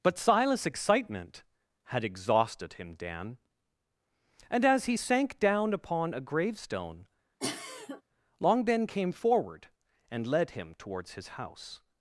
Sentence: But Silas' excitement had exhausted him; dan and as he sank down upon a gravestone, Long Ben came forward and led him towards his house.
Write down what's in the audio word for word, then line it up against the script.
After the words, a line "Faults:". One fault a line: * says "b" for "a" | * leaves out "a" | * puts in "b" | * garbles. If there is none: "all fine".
But Silas' excitement had exhausted him; dan and as he sank down upon a gravestone, Long Ben came forward and led him towards his house.
Faults:
all fine